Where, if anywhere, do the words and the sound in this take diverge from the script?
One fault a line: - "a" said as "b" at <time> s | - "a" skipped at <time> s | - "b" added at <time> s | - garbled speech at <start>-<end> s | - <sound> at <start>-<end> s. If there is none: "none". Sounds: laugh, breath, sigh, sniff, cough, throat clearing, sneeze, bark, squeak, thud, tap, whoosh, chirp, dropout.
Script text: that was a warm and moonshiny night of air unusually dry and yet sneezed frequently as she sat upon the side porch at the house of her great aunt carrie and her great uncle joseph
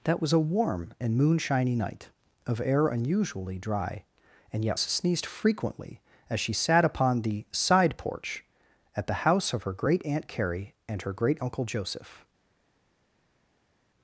none